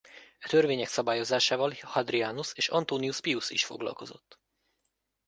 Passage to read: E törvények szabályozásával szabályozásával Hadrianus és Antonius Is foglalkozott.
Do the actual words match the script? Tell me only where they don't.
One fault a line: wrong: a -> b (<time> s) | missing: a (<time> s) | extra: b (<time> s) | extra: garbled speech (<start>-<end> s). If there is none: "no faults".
missing: szabályozásával (1.7 s)
extra: Pius (3.2 s)